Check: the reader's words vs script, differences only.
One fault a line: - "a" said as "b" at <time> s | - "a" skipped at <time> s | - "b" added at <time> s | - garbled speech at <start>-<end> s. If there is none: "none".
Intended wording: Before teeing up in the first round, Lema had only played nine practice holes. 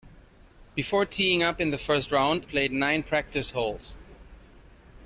- "Lema had only" skipped at 2.5 s